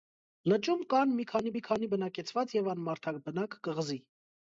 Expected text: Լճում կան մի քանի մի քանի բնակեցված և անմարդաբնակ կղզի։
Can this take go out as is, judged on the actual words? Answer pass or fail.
pass